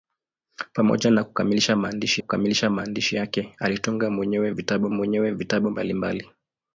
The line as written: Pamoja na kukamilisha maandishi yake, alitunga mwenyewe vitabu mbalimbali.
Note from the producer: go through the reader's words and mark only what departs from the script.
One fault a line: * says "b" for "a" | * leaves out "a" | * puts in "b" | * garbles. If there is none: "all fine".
* puts in "kukamilisha maandishi"
* puts in "mwenyewe vitabu"